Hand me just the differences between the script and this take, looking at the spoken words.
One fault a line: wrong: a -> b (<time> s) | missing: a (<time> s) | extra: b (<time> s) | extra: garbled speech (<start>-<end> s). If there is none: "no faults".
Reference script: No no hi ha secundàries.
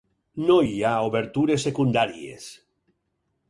missing: no (0.6 s)
extra: obertures (1.1 s)